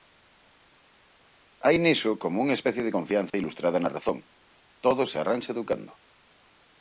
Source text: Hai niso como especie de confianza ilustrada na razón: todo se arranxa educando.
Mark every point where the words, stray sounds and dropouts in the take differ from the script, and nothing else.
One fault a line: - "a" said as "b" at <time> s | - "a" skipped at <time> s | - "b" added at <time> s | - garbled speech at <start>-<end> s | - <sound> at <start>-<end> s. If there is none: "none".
- "unha" added at 2.4 s
- dropout at 3.3-3.3 s